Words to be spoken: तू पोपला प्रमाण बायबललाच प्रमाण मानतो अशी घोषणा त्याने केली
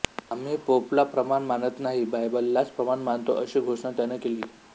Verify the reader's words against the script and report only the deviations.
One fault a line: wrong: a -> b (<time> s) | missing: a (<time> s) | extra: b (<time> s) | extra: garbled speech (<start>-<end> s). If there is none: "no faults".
wrong: तू -> आम्ही (0.3 s)
extra: मानत नाही (1.4 s)